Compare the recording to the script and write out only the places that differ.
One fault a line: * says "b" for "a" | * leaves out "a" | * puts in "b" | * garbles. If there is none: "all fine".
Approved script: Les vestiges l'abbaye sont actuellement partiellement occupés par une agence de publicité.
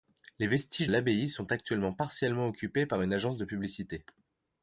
all fine